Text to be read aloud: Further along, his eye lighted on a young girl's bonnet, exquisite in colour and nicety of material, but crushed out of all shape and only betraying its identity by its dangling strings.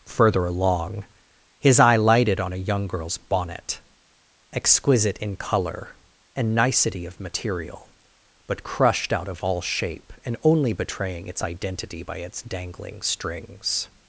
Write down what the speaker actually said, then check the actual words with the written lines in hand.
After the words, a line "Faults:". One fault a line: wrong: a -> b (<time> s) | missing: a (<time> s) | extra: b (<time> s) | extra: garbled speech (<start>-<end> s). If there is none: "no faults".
Further along, his eye lighted on a young girl's bonnet, exquisite in colour and nicety of material, but crushed out of all shape and only betraying its identity by its dangling strings.
Faults:
no faults